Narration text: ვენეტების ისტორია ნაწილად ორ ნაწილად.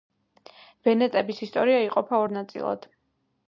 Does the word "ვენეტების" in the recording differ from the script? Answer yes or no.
no